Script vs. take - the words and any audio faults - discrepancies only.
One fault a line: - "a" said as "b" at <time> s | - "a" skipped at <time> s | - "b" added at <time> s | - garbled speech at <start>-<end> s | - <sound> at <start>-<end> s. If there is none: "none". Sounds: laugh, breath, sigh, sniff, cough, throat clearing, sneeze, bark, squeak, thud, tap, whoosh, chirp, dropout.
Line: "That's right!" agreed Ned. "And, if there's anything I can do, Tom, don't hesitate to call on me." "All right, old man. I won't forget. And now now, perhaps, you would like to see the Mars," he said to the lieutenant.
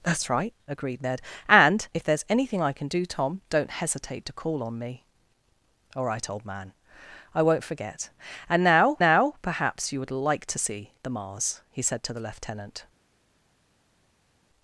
none